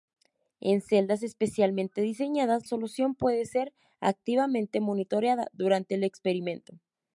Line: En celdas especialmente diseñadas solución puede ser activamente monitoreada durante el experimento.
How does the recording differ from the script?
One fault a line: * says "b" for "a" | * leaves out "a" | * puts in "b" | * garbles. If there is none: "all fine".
all fine